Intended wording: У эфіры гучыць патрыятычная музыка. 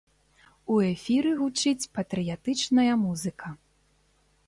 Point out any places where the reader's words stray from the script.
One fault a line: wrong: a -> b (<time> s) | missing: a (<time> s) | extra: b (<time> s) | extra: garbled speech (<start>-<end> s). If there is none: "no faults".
no faults